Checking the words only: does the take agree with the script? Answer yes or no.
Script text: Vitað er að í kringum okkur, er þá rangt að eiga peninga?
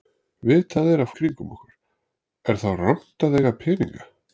yes